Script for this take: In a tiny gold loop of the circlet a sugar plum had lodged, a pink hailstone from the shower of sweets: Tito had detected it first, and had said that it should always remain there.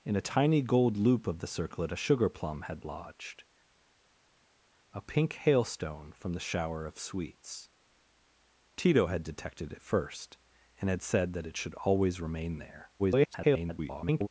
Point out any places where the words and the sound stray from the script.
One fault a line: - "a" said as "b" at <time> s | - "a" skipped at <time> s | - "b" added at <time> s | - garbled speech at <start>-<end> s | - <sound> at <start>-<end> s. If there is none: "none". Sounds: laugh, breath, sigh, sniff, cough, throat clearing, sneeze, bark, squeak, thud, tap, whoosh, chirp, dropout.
- garbled speech at 13.0-14.3 s